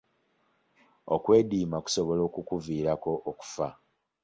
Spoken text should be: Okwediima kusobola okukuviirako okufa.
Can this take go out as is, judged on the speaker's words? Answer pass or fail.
pass